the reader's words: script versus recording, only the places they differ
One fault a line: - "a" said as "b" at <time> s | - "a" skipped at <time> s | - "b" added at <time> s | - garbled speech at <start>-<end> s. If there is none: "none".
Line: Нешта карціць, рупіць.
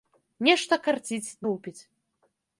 none